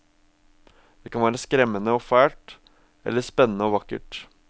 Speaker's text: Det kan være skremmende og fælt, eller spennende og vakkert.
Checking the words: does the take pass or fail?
pass